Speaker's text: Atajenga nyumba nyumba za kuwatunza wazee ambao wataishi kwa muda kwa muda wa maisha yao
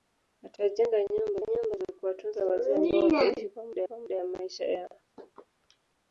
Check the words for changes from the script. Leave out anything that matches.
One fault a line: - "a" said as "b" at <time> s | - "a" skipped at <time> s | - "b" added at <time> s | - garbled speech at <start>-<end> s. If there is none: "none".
none